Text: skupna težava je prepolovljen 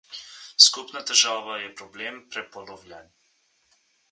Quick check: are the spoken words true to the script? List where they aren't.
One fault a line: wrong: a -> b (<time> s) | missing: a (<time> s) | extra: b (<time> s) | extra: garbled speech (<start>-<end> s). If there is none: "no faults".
extra: problem (1.8 s)